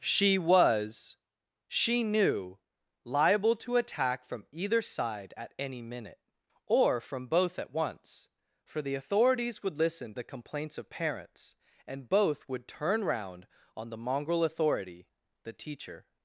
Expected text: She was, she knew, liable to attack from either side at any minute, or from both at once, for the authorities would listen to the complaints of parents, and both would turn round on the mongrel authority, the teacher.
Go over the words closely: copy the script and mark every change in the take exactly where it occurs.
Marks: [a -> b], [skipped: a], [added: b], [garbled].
She was, she knew, liable to attack from either side at any minute, or from both at once, for the authorities would listen [skipped: to] the complaints of parents, and both would turn round on the mongrel authority, the teacher.